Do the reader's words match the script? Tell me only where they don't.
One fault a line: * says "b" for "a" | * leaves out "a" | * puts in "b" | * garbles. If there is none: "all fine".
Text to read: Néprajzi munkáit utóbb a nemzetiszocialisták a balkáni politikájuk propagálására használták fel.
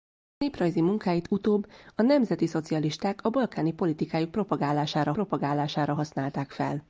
* puts in "propagálására"